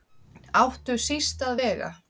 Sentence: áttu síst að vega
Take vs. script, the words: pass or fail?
pass